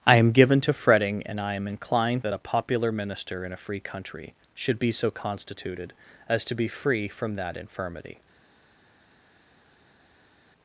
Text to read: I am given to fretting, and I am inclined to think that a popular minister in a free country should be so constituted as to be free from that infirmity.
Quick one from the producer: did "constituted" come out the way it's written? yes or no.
yes